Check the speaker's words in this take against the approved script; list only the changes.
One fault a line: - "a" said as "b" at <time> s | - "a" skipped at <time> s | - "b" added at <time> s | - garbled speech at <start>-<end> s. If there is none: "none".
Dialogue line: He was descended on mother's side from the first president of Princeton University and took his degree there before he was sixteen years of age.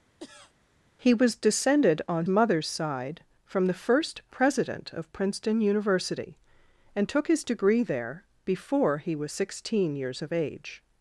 none